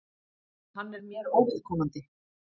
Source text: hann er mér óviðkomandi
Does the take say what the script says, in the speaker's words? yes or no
yes